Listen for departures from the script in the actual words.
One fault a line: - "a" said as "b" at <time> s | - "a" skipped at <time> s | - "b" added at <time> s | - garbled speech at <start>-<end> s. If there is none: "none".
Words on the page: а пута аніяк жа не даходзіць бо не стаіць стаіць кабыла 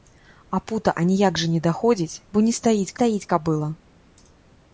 none